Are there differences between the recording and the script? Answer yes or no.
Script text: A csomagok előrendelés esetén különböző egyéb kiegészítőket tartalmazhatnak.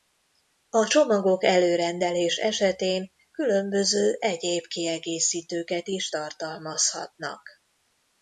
yes